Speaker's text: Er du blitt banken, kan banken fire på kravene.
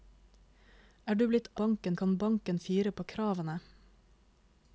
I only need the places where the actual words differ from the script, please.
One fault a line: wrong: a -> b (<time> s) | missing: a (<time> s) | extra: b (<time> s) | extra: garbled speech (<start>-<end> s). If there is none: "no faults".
no faults